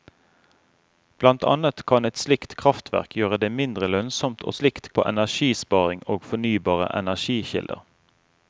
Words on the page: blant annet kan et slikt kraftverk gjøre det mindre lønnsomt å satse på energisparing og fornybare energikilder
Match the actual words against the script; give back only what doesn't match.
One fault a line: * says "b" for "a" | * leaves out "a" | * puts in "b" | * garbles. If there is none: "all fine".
* says "slikt" for "satse"